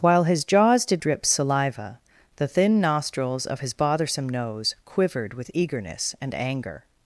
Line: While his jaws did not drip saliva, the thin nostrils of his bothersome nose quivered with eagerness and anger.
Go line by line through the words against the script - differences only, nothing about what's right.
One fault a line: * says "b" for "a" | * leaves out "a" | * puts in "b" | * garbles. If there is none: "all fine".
* leaves out "not"